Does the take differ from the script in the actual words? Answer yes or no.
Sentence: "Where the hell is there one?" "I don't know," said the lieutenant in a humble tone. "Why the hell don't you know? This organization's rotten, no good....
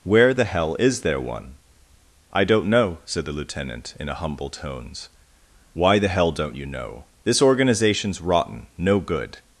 yes